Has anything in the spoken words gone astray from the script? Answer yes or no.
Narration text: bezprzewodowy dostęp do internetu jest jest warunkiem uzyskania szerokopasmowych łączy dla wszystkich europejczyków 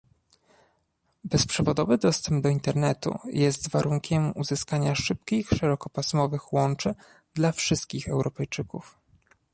yes